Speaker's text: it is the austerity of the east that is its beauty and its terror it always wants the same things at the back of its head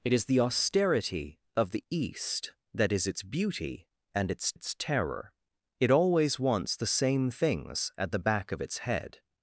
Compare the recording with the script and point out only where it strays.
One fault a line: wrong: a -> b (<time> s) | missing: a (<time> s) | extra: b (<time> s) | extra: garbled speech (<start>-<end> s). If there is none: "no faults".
extra: its (4.5 s)